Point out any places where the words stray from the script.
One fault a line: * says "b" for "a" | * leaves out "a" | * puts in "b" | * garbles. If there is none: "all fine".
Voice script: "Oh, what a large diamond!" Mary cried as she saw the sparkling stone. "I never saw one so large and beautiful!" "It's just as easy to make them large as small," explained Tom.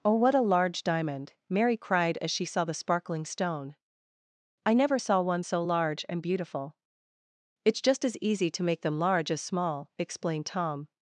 all fine